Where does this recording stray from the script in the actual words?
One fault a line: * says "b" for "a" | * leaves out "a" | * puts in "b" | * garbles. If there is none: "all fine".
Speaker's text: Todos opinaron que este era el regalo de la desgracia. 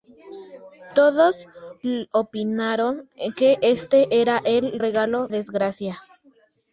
* leaves out "de la"